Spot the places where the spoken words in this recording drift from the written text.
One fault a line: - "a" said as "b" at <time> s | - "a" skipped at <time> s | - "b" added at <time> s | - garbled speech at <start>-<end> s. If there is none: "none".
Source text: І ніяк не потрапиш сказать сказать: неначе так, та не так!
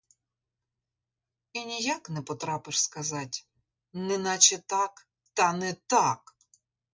- "сказать" skipped at 3.5 s